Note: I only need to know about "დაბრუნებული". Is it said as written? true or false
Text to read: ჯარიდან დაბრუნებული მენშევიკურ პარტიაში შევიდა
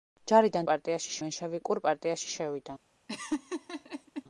false